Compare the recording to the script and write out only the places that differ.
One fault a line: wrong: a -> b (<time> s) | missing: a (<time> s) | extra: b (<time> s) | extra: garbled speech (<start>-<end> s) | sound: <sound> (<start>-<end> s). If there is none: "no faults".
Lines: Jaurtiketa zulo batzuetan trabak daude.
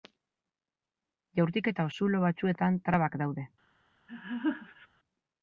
sound: laugh (4.1-4.9 s)